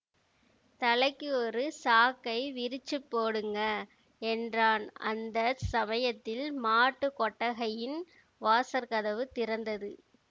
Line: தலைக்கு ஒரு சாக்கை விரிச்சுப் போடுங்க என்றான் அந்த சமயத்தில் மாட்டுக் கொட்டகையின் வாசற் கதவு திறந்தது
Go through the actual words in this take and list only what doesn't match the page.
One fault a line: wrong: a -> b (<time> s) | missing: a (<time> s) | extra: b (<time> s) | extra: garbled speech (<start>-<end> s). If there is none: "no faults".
no faults